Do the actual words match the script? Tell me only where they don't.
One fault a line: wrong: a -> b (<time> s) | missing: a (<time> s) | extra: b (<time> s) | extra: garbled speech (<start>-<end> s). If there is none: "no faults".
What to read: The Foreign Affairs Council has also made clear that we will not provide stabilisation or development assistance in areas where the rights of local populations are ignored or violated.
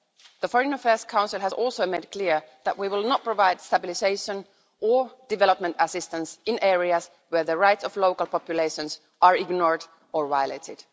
no faults